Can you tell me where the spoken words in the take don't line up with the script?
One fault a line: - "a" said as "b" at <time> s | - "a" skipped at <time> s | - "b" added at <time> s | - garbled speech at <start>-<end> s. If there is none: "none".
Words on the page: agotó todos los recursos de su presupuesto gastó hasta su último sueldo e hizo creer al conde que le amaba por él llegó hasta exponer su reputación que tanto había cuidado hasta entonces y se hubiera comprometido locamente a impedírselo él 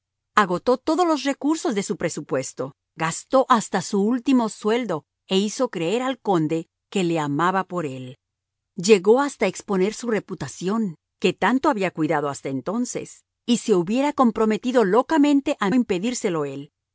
none